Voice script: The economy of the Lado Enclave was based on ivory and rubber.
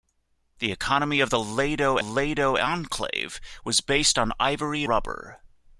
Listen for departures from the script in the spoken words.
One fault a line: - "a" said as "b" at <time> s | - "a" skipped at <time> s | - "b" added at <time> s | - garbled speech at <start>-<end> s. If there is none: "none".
- "Lado" added at 2.0 s
- "and" skipped at 4.8 s